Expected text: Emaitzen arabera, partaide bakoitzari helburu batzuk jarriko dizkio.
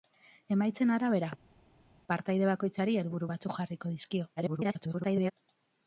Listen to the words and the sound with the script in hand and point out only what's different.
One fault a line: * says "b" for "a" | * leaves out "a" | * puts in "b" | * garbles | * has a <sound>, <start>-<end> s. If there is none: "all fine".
* garbles